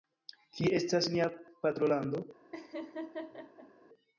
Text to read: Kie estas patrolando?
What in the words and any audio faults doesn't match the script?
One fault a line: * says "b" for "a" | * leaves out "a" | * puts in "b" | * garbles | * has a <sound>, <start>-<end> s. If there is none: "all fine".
* puts in "nia"
* has a laugh, 2.5-3.7 s